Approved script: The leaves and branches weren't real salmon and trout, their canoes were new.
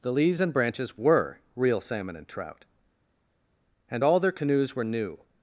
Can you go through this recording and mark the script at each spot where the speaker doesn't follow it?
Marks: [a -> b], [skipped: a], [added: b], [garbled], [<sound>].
The leaves and branches [weren't -> were] real salmon and trout, [added: and all] their canoes were new.